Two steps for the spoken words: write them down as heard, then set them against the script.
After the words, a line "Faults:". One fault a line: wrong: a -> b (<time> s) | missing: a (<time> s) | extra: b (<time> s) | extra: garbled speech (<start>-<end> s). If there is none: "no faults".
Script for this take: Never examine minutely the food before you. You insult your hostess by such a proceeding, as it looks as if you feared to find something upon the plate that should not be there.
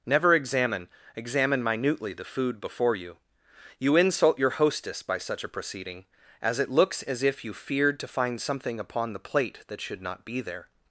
Never examine examine minutely the food before you. You insult your hostess by such a proceeding, as it looks as if you feared to find something upon the plate that should not be there.
Faults:
extra: examine (1.1 s)